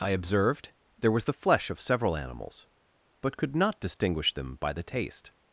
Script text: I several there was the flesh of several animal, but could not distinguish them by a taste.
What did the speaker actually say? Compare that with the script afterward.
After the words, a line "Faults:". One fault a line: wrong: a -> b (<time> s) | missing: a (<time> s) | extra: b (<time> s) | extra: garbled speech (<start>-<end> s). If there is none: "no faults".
I observed there was the flesh of several animals, but could not distinguish them by the taste.
Faults:
wrong: several -> observed (0.2 s)
wrong: animal -> animals (2.1 s)
wrong: a -> the (4.7 s)